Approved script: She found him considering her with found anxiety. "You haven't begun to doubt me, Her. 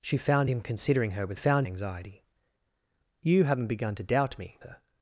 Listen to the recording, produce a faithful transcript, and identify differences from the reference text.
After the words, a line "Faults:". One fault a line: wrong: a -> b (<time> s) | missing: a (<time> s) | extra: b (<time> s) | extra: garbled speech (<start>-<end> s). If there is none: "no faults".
She found him considering her with found anxiety. "You haven't begun to doubt me, Her.
Faults:
no faults